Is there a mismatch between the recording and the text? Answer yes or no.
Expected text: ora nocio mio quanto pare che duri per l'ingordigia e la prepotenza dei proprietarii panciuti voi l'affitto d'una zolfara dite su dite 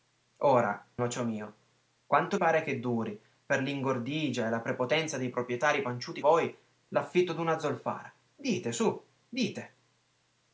no